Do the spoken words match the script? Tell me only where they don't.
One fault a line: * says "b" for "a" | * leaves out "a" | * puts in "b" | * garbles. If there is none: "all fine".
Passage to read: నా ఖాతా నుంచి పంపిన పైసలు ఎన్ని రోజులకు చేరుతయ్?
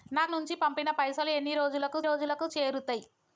* leaves out "ఖాతా"
* puts in "రోజులకు"